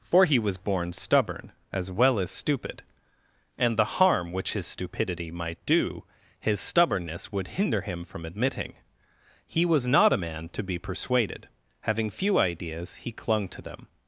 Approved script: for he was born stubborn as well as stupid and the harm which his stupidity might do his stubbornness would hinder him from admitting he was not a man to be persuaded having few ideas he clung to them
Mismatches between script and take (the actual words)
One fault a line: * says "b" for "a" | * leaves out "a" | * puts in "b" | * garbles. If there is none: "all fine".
all fine